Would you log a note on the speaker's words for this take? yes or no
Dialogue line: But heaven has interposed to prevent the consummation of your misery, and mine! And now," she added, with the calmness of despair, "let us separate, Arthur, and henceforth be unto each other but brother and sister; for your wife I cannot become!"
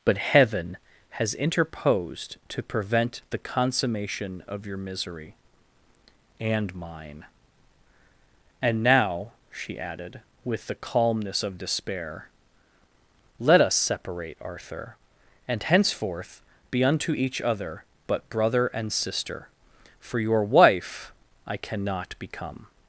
no